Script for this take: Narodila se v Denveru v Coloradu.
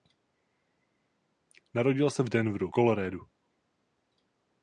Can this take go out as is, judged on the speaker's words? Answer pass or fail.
fail